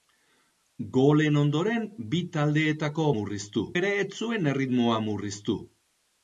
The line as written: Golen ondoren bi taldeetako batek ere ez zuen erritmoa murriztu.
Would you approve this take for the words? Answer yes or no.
no